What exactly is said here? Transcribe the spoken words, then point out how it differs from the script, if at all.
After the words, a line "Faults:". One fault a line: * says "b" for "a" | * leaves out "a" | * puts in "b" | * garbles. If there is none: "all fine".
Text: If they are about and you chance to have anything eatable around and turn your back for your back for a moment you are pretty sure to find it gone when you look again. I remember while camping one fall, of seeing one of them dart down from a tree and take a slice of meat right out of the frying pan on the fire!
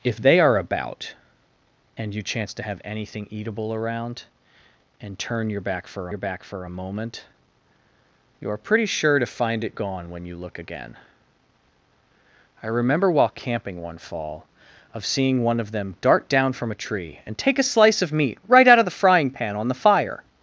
If they are about and you chance to have anything eatable around and turn your back for your back for a moment you are pretty sure to find it gone when you look again. I remember while camping one fall, of seeing one of them dart down from a tree and take a slice of meat right out of the frying pan on the fire!
Faults:
all fine